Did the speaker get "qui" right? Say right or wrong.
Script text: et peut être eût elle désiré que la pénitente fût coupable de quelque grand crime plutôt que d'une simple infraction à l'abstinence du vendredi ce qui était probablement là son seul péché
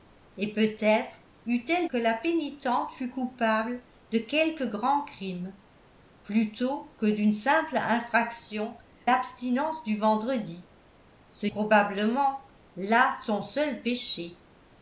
wrong